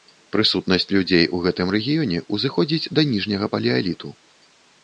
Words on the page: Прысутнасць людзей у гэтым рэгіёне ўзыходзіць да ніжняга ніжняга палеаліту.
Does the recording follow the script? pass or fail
fail